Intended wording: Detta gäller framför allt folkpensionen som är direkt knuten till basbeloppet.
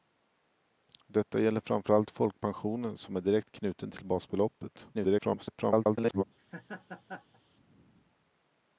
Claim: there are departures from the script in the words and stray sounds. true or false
true